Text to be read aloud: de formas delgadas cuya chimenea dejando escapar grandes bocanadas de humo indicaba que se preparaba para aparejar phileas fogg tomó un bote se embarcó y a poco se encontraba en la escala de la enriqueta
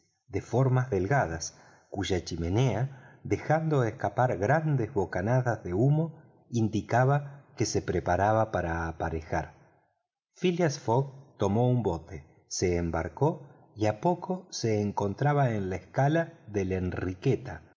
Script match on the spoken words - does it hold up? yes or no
yes